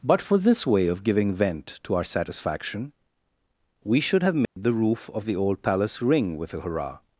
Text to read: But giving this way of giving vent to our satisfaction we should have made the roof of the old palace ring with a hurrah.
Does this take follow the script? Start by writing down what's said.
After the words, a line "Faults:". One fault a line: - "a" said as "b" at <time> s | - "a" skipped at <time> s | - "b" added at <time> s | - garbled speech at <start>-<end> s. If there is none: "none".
But for this way of giving vent to our satisfaction we should have made the roof of the old palace ring with a hurrah.
Faults:
- "giving" said as "for" at 0.2 s